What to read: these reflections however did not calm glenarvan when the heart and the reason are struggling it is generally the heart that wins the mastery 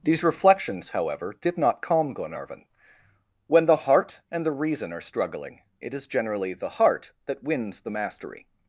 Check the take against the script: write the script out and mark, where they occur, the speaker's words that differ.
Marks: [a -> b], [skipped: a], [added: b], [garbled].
these reflections however did not calm glenarvan when the heart and the reason are struggling it is generally the heart that wins the mastery